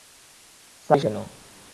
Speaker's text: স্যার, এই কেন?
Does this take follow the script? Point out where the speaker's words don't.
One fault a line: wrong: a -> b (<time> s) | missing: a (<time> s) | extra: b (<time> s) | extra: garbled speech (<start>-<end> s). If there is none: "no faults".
no faults